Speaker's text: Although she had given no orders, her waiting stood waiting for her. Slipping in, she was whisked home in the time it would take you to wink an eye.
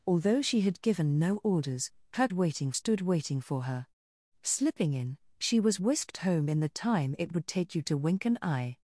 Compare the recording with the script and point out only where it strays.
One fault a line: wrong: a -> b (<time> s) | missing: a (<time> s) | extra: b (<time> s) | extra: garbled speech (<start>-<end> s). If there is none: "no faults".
no faults